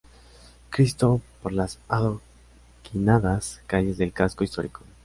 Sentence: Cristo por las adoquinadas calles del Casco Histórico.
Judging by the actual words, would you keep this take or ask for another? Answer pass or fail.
pass